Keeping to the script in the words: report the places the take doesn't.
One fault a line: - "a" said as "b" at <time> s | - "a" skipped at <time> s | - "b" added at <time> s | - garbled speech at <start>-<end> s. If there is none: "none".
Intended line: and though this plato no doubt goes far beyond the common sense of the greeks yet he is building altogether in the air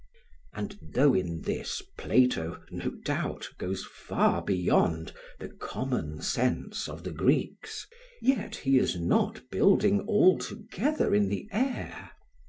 - "in" added at 1.1 s
- "not" added at 8.9 s